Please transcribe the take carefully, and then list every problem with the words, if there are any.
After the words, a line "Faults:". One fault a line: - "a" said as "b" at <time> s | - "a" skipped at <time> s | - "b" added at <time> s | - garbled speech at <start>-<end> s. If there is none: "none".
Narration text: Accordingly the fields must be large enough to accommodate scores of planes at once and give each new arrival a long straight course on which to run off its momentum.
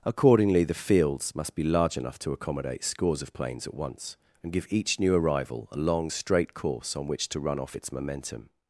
Accordingly the fields must be large enough to accommodate scores of planes at once and give each new arrival a long straight course on which to run off its momentum.
Faults:
none